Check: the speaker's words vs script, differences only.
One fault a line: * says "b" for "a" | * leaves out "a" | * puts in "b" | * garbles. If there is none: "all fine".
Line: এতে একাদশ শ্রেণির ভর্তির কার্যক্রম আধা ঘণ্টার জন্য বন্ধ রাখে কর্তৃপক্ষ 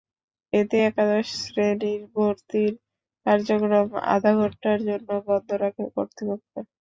all fine